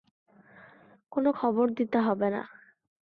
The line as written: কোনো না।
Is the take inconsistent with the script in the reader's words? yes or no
yes